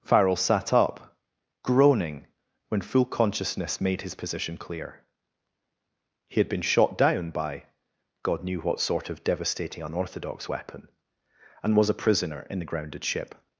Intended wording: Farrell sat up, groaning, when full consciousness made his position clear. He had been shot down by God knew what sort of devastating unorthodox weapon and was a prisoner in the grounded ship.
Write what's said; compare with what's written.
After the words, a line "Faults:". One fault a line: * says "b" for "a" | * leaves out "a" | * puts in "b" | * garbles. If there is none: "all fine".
Farrell sat up, groaning, when full consciousness made his position clear. He had been shot down by God knew what sort of devastating unorthodox weapon and was a prisoner in the grounded ship.
Faults:
all fine